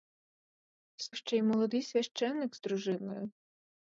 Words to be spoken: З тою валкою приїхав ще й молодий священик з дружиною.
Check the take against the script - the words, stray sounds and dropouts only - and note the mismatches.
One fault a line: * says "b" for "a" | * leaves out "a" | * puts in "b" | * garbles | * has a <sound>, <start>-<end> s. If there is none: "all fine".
* leaves out "тою валкою приїхав"